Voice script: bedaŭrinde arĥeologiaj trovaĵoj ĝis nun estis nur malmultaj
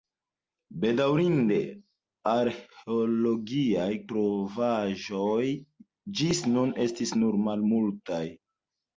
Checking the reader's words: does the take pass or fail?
pass